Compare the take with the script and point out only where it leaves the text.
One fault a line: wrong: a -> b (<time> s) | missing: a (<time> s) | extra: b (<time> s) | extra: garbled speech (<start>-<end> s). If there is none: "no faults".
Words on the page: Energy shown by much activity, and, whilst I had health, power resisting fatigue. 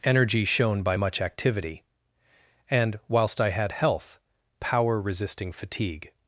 no faults